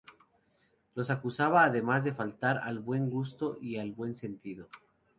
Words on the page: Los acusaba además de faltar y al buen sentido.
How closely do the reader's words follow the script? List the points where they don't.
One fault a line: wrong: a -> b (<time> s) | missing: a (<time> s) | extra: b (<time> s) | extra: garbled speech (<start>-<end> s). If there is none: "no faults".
extra: al buen gusto (2.5 s)